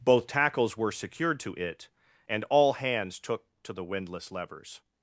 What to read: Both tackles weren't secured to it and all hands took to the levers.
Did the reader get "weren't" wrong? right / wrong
wrong